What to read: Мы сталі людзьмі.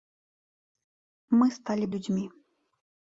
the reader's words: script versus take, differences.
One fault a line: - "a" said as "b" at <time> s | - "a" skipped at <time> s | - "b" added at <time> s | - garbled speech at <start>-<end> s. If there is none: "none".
none